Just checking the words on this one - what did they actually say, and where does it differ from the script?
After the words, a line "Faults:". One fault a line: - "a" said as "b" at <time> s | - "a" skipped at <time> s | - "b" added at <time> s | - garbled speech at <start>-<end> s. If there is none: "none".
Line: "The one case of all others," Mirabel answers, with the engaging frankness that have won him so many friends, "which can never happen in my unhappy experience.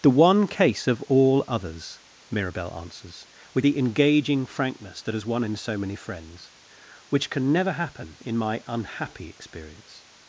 "The one case of all others," Mirabel answers, with the engaging frankness that has won him so many friends, "which can never happen in my unhappy experience.
Faults:
- "have" said as "has" at 5.1 s